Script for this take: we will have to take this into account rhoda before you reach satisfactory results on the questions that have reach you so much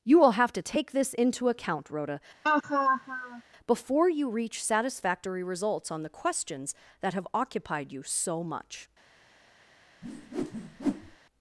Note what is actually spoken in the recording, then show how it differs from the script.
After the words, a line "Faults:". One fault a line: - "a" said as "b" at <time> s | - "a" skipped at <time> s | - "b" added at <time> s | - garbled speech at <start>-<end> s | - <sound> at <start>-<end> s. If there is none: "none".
you will have to take this into account rhoda before you reach satisfactory results on the questions that have occupied you so much
Faults:
- "we" said as "you" at 0.0 s
- laugh at 2.4-3.4 s
- "reach" said as "occupied" at 7.3 s
- whoosh at 10.0-11.2 s